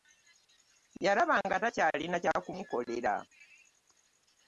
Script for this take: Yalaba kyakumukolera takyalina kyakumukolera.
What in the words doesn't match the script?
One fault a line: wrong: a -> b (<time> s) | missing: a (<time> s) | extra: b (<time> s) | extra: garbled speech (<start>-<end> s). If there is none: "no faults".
wrong: kyakumukolera -> nga (1.4 s)